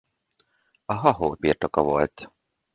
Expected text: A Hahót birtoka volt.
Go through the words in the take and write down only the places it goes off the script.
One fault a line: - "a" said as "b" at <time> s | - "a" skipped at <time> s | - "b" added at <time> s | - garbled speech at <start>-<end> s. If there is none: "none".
none